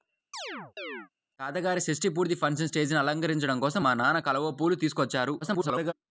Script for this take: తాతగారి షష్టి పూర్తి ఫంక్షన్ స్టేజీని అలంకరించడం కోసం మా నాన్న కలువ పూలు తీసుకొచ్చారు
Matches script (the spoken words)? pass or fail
fail